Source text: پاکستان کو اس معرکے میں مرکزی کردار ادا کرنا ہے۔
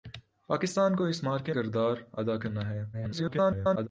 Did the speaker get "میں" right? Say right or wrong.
wrong